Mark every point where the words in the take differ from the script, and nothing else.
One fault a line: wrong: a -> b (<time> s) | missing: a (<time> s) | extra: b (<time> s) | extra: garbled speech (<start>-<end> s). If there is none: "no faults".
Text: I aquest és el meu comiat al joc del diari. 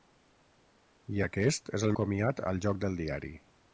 missing: meu (2.0 s)